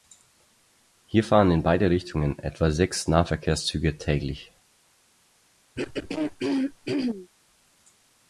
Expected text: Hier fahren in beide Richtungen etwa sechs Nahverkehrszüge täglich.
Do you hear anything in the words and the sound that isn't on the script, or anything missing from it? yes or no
yes